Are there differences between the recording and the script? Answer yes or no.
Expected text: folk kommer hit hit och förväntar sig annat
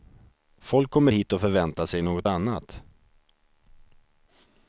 yes